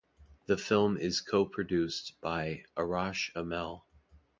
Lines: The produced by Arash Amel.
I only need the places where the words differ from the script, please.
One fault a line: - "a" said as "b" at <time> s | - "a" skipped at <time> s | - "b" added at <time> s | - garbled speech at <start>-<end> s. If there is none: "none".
- "film is co" added at 0.6 s